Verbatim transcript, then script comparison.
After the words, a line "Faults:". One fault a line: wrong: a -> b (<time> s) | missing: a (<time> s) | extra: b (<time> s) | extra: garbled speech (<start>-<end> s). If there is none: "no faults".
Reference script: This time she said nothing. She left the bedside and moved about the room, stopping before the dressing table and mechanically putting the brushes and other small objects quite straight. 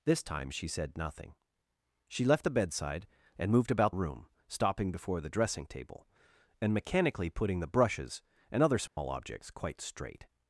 This time she said nothing. She left the bedside and moved about room, stopping before the dressing table and mechanically putting the brushes and other small objects quite straight.
Faults:
missing: the (3.9 s)